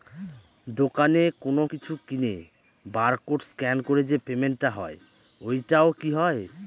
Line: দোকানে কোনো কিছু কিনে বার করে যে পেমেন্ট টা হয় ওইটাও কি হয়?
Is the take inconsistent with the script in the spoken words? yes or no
yes